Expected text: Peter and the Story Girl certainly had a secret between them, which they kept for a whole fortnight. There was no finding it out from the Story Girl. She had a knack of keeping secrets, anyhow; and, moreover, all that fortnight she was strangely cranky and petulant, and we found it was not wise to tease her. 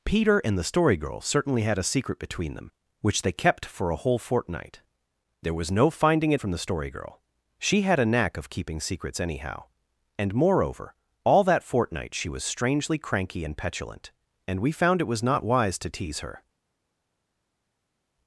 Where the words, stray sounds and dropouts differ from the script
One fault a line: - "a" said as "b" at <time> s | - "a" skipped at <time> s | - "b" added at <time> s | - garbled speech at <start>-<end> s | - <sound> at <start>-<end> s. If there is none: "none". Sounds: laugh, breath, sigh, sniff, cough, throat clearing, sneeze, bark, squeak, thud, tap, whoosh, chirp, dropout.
- "out" skipped at 6.4 s